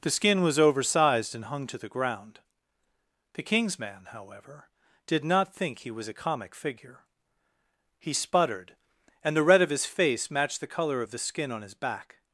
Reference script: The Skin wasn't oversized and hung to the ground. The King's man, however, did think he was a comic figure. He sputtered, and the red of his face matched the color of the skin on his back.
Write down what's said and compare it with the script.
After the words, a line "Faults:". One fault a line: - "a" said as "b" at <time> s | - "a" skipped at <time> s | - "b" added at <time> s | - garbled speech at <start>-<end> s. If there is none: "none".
The Skin was oversized and hung to the ground. The King's man, however, did not think he was a comic figure. He sputtered, and the red of his face matched the color of the skin on his back.
Faults:
- "wasn't" said as "was" at 0.4 s
- "not" added at 5.2 s